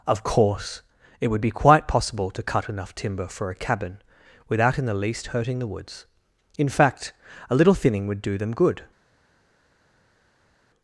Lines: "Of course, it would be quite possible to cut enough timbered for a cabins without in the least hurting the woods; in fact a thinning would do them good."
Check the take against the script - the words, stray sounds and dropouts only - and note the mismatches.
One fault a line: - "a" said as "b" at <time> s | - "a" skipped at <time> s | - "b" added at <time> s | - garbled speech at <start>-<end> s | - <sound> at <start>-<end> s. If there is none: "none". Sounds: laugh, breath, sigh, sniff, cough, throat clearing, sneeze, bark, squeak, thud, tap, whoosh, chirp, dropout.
- "timbered" said as "timber" at 3.0 s
- "cabins" said as "cabin" at 3.6 s
- "little" added at 7.5 s